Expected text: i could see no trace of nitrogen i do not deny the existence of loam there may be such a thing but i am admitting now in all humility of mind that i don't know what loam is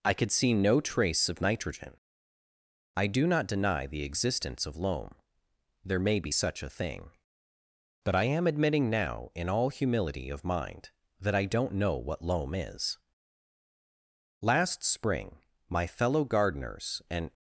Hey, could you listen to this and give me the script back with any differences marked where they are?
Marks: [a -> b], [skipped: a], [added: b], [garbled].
i could see no trace of nitrogen i do not deny the existence of loam there may be such a thing but i am admitting now in all humility of mind that i don't know what loam is [added: last spring my fellow gardeners and]